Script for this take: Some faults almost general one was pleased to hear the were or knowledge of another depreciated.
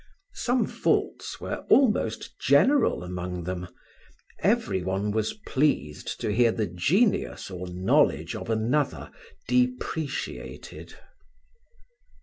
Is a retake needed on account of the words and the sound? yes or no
yes